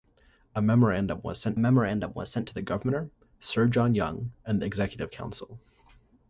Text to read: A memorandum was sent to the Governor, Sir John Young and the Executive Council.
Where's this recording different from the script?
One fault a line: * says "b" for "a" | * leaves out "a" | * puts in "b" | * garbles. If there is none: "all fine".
* puts in "memorandum was sent"